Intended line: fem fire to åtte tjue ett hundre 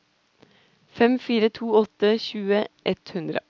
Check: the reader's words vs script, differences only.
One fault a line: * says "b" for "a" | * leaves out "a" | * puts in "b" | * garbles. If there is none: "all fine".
all fine